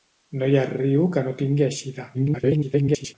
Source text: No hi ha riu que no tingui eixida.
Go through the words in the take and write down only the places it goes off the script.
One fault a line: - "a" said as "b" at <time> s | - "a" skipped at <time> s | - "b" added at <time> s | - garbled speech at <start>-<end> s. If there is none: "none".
- garbled speech at 2.1-3.1 s